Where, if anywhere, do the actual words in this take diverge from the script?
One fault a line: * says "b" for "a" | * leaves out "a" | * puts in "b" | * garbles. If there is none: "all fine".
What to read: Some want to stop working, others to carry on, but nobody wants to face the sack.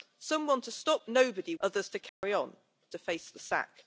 * says "nobody" for "working"
* leaves out "but nobody wants"